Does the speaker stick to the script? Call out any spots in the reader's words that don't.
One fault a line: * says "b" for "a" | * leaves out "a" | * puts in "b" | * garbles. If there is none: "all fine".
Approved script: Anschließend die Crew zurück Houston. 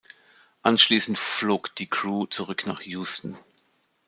* puts in "flog"
* puts in "nach"